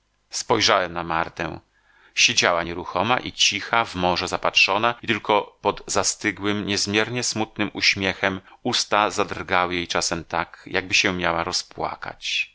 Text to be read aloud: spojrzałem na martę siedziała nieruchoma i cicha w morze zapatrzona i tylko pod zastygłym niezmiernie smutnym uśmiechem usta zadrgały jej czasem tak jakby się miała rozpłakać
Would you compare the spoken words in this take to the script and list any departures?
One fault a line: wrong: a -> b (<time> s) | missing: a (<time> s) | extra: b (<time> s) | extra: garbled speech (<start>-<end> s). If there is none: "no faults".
no faults